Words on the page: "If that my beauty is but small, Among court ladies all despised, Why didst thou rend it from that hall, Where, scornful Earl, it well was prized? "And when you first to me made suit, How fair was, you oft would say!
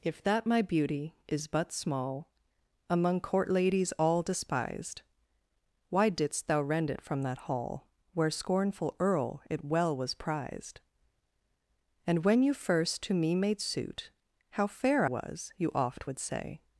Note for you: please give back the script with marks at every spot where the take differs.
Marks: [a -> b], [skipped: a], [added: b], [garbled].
"If that my beauty is but small, Among court ladies all despised, Why didst thou rend it from that hall, Where, scornful Earl, it well was prized? "And when you first to me made suit, How fair was, you oft would say!